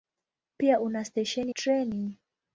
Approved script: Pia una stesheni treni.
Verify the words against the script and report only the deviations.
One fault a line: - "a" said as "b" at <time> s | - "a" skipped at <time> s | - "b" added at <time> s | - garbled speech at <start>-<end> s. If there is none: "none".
none